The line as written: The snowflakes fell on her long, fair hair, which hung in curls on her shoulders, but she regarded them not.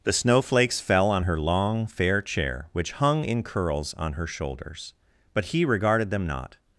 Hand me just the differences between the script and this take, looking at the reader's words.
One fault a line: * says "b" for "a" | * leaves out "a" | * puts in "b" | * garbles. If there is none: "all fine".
* says "chair" for "hair"
* says "he" for "she"